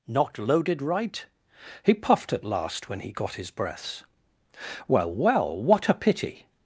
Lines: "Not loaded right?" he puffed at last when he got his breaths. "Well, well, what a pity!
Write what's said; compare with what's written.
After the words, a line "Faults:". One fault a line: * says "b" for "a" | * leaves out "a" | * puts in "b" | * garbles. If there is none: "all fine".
"Not loaded right?" he puffed at last when he got his breaths. "Well, well, what a pity!
Faults:
all fine